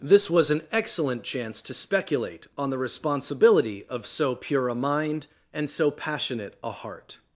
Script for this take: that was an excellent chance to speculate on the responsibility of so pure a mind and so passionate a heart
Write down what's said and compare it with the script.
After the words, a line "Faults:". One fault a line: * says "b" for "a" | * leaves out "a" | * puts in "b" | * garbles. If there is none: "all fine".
this was an excellent chance to speculate on the responsibility of so pure a mind and so passionate a heart
Faults:
* says "this" for "that"